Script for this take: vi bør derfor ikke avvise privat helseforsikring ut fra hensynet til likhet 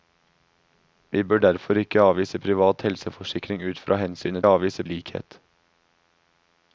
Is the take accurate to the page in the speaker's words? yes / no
no